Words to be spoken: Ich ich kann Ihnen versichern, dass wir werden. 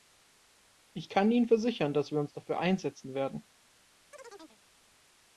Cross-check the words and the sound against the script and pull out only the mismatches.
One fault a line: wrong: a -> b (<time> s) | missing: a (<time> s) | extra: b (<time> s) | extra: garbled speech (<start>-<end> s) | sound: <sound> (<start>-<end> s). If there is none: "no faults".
missing: ich (1.1 s)
extra: uns dafür einsetzen (2.2 s)
sound: chirp (4.1-4.6 s)